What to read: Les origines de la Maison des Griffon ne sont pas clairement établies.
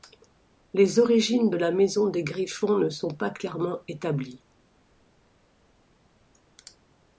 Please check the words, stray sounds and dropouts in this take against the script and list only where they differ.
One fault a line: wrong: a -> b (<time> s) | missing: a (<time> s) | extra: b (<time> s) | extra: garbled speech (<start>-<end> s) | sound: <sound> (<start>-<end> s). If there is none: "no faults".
no faults